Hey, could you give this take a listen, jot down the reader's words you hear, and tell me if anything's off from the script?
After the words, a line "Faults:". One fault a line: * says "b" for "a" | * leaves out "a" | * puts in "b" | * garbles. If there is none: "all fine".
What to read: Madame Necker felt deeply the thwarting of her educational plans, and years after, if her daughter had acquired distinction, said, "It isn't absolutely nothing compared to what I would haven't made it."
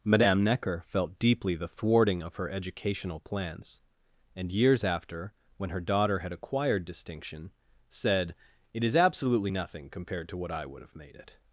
Madame Necker felt deeply the thwarting of her educational plans, and years after, when her daughter had acquired distinction, said, "It is absolutely nothing compared to what I would have made it."
Faults:
* says "when" for "if"
* says "is" for "isn't"
* says "have" for "haven't"